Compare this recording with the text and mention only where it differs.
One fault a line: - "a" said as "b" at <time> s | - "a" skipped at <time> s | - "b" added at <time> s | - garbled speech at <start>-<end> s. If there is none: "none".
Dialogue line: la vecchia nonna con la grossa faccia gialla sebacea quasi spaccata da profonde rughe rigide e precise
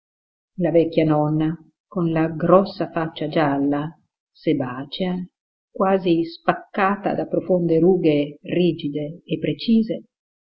none